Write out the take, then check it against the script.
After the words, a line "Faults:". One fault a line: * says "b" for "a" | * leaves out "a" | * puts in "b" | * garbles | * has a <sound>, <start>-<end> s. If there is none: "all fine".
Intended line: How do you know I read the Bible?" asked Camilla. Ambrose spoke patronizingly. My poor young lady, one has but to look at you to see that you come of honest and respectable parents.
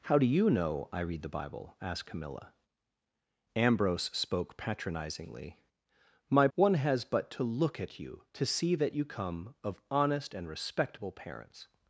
How do you know I read the Bible?" asked Camilla. Ambrose spoke patronizingly. My one has but to look at you to see that you come of honest and respectable parents.
Faults:
* leaves out "poor young lady"